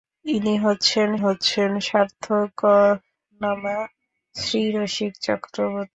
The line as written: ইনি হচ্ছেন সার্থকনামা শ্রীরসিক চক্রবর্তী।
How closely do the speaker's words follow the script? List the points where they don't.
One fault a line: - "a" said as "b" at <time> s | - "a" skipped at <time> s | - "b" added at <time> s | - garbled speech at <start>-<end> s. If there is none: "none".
- "হচ্ছেন" added at 1.2 s